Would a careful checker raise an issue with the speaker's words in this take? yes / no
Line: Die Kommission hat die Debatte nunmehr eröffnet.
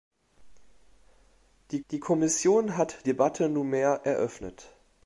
yes